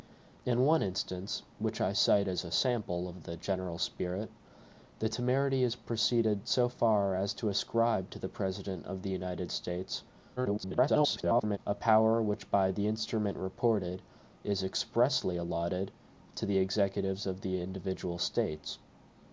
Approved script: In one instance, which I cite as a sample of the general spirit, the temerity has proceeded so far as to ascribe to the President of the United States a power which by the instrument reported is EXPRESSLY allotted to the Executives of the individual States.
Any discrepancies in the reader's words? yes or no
yes